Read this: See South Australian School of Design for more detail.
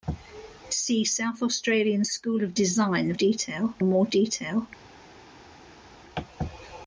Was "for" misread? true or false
true